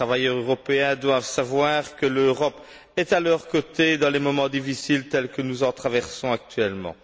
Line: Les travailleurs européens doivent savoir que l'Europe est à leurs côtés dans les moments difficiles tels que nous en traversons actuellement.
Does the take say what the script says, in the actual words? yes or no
yes